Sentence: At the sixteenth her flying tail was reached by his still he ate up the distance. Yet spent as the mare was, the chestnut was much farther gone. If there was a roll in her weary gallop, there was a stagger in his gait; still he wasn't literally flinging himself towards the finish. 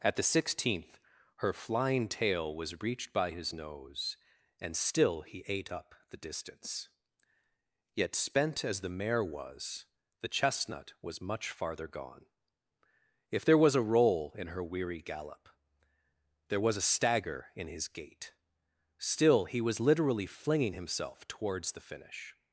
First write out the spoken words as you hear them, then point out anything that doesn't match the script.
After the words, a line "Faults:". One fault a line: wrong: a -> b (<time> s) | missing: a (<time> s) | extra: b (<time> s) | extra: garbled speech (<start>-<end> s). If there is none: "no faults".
At the sixteenth her flying tail was reached by his nose And still he ate up the distance. Yet spent as the mare was, the chestnut was much farther gone. If there was a roll in her weary gallop, there was a stagger in his gait; still he was literally flinging himself towards the finish.
Faults:
extra: nose And (3.5 s)
wrong: wasn't -> was (19.6 s)